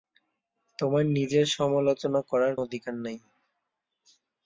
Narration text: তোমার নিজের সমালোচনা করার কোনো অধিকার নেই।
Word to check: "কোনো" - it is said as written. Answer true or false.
false